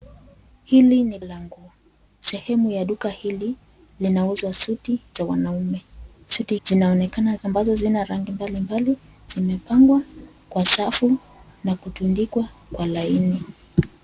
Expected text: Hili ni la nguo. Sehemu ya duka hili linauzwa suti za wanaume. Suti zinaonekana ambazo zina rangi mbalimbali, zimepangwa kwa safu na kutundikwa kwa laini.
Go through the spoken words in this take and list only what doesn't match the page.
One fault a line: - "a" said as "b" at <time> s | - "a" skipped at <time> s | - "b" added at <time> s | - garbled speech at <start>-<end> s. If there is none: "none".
none